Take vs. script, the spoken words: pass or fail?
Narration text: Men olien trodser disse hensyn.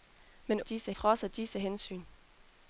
fail